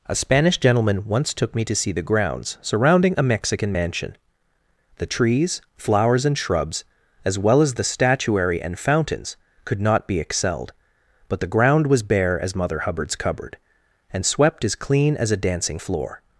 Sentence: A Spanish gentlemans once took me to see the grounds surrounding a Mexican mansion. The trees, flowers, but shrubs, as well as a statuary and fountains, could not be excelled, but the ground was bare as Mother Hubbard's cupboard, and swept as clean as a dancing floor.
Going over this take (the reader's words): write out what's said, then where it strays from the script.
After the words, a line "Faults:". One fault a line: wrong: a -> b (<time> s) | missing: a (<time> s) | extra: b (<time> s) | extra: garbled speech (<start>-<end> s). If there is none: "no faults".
A Spanish gentleman once took me to see the grounds surrounding a Mexican mansion. The trees, flowers, and shrubs, as well as the statuary and fountains, could not be excelled, but the ground was bare as Mother Hubbard's cupboard, and swept as clean as a dancing floor.
Faults:
wrong: gentlemans -> gentleman (0.6 s)
wrong: but -> and (6.2 s)
wrong: a -> the (7.7 s)